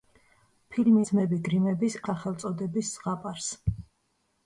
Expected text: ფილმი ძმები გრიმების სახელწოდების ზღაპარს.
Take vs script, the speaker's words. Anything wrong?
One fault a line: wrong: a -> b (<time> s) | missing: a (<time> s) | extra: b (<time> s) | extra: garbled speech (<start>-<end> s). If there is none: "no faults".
no faults